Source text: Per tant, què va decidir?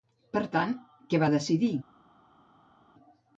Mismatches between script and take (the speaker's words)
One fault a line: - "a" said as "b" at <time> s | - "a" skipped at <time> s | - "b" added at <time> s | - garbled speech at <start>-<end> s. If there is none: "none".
none